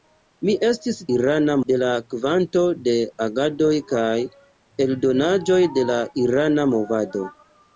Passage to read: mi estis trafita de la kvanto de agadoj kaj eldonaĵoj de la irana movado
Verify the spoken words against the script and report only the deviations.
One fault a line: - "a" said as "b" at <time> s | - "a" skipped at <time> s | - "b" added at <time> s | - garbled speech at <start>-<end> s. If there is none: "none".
- "trafita" said as "irana" at 1.2 s